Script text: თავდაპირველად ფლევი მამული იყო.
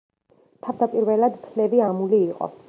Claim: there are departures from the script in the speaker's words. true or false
false